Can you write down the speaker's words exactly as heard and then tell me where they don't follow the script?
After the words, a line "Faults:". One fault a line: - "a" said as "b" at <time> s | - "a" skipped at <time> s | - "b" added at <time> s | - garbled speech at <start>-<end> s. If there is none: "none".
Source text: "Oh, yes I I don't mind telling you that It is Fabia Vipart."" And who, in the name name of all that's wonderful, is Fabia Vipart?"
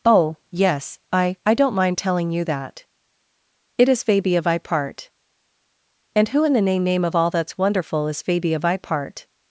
"Oh, yes I I don't mind telling you that It is Fabia Vipart."" And who, in the name name of all that's wonderful, is Fabia Vipart?"
Faults:
none